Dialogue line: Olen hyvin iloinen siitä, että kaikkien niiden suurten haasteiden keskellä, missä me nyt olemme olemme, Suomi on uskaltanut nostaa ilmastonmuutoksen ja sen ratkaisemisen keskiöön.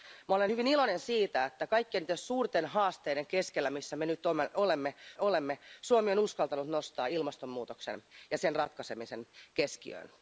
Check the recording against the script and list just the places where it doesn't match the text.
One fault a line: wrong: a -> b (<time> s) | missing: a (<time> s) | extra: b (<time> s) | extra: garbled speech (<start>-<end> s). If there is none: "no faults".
no faults